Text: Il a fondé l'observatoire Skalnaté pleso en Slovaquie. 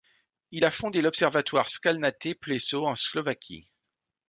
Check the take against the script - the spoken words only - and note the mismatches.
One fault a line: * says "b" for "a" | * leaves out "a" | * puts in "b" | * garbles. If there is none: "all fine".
all fine